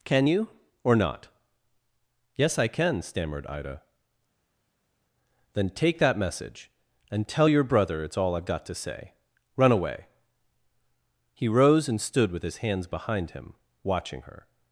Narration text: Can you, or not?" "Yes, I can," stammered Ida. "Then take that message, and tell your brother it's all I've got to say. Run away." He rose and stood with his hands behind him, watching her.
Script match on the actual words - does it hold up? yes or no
yes